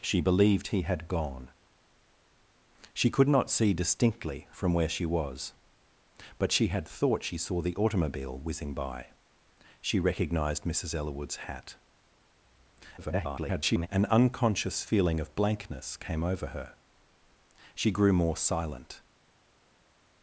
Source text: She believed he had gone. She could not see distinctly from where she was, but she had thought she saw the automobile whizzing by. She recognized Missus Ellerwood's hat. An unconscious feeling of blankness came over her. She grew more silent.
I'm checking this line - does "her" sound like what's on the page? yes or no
yes